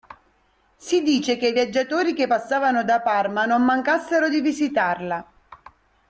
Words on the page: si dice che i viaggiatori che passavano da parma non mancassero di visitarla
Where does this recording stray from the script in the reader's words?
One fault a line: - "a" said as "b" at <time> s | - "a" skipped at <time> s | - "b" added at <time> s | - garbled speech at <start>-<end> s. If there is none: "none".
none